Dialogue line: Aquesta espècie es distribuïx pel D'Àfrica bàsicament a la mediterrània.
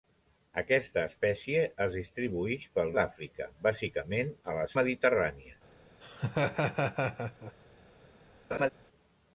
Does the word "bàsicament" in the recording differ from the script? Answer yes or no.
no